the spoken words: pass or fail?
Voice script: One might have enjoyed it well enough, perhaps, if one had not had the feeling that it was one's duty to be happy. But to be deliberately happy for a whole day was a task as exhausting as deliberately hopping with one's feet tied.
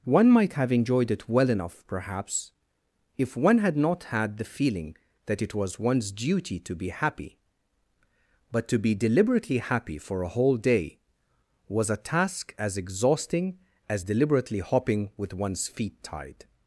pass